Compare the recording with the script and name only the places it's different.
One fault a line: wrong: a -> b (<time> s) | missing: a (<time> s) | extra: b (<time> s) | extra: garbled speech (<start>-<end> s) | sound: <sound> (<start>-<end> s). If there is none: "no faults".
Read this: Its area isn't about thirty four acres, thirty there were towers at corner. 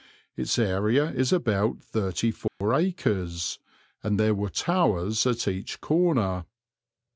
wrong: isn't -> is (1.1 s)
sound: dropout (2.5-2.6 s)
wrong: thirty -> and (4.0 s)
extra: each (5.5 s)